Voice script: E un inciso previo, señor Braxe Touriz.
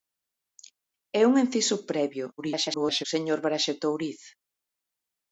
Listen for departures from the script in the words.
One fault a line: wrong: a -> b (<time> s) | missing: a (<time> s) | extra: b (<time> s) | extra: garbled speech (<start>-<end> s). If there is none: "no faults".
extra: garbled speech (2.4-3.0 s)